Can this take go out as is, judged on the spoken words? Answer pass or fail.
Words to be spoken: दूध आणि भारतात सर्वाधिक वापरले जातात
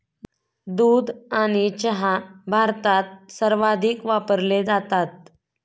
fail